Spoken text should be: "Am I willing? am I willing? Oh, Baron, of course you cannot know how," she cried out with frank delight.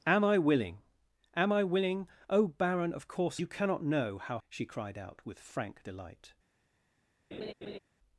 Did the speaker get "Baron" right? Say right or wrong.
right